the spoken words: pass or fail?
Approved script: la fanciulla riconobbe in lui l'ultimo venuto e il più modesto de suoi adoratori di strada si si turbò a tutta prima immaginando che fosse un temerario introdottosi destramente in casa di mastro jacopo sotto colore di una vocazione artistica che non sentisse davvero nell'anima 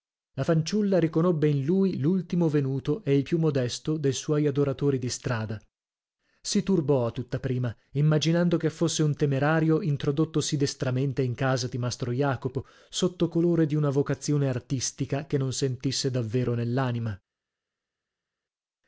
fail